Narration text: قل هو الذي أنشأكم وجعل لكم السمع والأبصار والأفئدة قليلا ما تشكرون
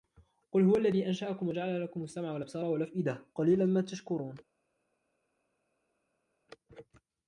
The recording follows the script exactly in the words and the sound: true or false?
true